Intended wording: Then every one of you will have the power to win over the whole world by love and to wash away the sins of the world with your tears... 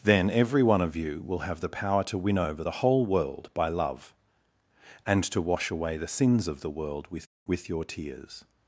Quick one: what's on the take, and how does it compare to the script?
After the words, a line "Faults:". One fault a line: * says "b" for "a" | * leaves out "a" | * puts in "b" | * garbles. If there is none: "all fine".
Then every one of you will have the power to win over the whole world by love and to wash away the sins of the world with with your tears...
Faults:
* puts in "with"